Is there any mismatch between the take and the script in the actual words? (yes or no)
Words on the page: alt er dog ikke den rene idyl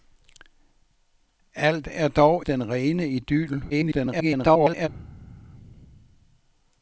yes